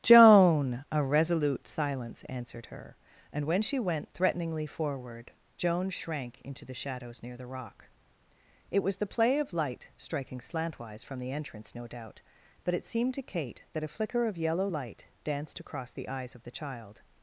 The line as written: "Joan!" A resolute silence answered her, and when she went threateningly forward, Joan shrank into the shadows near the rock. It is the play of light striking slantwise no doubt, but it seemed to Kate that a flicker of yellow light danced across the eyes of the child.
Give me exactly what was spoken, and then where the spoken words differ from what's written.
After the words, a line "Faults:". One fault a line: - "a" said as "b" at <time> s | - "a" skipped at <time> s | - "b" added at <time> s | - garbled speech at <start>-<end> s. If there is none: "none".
"Joan!" A resolute silence answered her, and when she went threateningly forward, Joan shrank into the shadows near the rock. It was the play of light striking slantwise from the entrance, no doubt, but it seemed to Kate that a flicker of yellow light danced across the eyes of the child.
Faults:
- "is" said as "was" at 8.8 s
- "from the entrance" added at 11.1 s